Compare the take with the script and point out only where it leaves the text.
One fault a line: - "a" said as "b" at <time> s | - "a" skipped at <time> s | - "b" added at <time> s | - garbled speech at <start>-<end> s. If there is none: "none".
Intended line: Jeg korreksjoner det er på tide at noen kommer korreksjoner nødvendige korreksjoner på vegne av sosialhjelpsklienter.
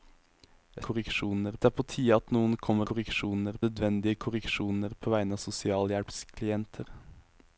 none